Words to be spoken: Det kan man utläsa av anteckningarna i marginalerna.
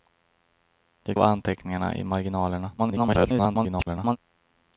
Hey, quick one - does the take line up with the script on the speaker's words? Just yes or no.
no